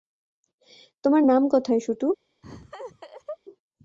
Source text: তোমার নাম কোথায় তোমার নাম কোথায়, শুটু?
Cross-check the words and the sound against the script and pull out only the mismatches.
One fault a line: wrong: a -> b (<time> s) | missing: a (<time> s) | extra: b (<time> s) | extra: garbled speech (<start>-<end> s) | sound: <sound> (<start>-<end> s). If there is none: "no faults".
missing: তোমার নাম কোথায় (1.8 s)
sound: laugh (2.4-3.4 s)